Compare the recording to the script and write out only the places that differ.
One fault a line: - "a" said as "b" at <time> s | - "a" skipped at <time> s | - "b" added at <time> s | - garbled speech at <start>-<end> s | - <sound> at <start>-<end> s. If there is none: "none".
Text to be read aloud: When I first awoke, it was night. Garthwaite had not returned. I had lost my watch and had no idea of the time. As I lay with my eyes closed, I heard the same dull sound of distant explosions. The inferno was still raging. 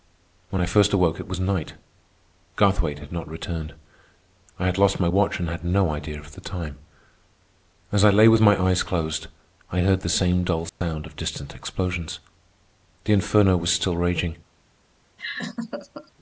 - dropout at 10.7-10.8 s
- laugh at 15.2-16.1 s